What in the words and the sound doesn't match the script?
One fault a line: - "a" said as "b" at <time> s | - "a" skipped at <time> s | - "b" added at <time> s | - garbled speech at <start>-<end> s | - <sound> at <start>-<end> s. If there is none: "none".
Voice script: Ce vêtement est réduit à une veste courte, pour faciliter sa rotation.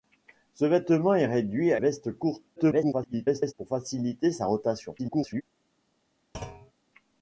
- "une" skipped at 1.8 s
- garbled speech at 2.6-3.5 s
- garbled speech at 5.0-5.4 s
- thud at 6.3-6.7 s